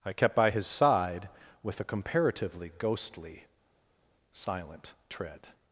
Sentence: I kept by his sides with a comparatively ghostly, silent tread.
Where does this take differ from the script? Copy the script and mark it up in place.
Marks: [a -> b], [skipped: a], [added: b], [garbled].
I kept by his [sides -> side] with a comparatively ghostly, silent tread.